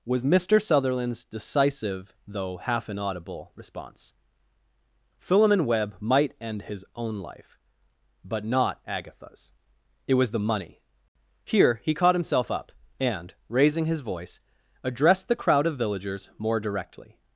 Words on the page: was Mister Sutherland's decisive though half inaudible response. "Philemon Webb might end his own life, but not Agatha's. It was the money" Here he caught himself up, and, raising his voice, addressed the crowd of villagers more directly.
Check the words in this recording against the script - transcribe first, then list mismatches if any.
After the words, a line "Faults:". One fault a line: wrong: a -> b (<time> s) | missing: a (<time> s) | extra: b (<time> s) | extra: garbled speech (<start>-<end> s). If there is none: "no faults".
was Mister Sutherland's decisive though half inaudible response. "Philemon Webb might end his own life, but not Agatha's. It was the money" Here he caught himself up, and, raising his voice, addressed the crowd of villagers more directly.
Faults:
no faults